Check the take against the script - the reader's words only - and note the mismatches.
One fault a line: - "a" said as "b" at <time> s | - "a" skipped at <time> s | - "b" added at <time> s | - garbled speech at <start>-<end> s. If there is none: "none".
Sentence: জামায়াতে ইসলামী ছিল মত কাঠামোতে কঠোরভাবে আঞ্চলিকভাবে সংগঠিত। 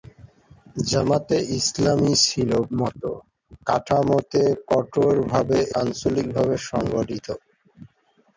none